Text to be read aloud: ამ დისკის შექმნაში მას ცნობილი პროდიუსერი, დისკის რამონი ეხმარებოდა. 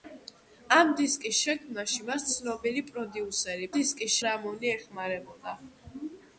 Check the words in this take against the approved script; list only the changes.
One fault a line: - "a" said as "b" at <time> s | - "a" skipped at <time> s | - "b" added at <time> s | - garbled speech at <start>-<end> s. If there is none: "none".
none